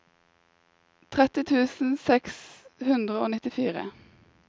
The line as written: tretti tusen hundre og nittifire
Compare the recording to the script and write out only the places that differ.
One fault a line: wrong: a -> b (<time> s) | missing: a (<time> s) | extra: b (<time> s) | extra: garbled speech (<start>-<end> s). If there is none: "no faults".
extra: seks (2.1 s)